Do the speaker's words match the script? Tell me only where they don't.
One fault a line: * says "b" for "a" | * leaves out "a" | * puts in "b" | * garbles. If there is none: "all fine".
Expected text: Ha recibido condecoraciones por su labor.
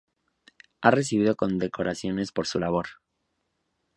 all fine